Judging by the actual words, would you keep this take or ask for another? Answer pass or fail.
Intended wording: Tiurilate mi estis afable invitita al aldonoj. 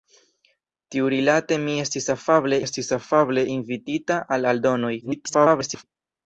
fail